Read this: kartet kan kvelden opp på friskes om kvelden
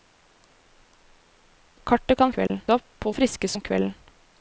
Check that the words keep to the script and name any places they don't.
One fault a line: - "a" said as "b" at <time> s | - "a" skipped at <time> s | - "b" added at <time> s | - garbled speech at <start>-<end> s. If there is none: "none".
none